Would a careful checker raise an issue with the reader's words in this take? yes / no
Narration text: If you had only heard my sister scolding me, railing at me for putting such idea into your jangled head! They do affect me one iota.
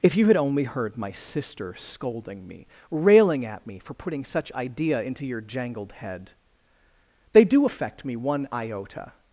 no